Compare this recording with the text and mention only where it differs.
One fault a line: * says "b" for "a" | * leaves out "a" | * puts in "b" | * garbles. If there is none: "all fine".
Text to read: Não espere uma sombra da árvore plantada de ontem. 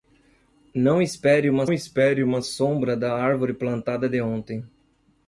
* puts in "espere uma"